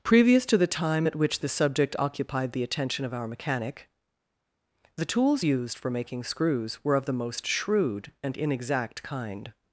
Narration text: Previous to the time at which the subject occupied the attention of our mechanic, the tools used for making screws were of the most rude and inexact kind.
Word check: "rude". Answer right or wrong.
wrong